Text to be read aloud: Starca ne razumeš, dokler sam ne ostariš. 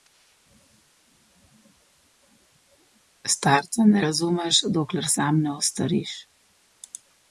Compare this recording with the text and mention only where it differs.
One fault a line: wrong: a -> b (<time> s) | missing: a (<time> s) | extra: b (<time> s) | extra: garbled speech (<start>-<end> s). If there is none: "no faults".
no faults